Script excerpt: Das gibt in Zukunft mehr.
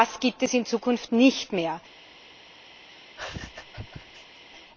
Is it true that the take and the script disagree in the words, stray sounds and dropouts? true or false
true